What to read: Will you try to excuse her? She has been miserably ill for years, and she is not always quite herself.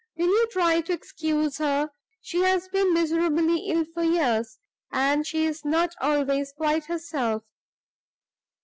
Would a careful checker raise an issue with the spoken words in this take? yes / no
no